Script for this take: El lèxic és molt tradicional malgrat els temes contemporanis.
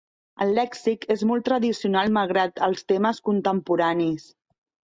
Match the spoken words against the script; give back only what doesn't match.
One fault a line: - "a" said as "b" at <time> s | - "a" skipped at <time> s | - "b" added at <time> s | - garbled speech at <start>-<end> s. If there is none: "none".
none